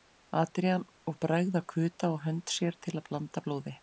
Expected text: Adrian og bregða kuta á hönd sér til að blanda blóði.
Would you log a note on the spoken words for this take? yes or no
no